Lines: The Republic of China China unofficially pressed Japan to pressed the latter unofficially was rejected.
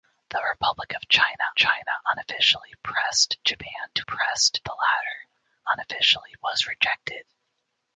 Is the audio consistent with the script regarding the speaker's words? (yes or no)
yes